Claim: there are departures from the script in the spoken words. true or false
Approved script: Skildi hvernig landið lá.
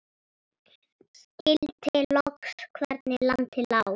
true